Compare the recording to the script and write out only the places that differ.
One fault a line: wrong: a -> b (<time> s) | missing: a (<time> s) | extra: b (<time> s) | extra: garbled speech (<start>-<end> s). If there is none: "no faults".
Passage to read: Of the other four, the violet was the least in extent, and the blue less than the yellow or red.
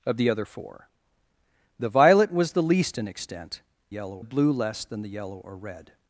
wrong: and -> yellow (3.9 s)